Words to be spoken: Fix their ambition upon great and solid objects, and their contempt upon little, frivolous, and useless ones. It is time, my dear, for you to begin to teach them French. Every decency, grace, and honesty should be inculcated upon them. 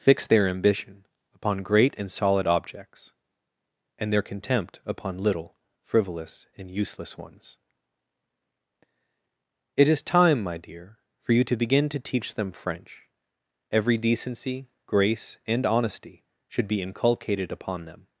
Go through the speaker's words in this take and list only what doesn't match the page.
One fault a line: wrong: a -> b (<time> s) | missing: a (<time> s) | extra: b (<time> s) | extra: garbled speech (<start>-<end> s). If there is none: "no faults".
no faults